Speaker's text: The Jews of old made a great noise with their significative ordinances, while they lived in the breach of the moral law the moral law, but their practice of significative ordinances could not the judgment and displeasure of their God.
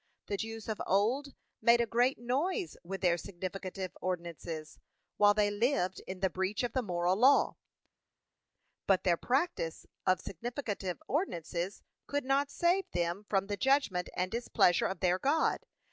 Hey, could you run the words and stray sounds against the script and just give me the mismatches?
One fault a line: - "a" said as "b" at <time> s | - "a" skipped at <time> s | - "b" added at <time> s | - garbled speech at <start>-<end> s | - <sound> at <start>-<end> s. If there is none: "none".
- "the moral law" skipped at 7.6 s
- "save them from" added at 12.5 s